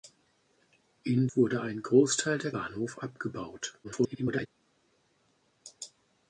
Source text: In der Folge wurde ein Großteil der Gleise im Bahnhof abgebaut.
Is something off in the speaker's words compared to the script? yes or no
yes